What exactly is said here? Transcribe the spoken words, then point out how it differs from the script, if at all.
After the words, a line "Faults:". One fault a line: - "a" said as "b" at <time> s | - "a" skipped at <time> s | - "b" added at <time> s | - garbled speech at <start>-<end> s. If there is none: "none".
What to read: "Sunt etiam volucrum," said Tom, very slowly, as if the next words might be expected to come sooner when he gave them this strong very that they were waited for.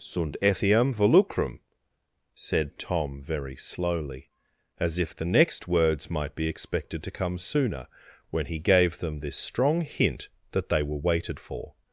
"Sunt etiam volucrum," said Tom, very slowly, as if the next words might be expected to come sooner when he gave them this strong hint that they were waited for.
Faults:
- "very" said as "hint" at 9.8 s